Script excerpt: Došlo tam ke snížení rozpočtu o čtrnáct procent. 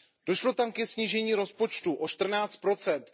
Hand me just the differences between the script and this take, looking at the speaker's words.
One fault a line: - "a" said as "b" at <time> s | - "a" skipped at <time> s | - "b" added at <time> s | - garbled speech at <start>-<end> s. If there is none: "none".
none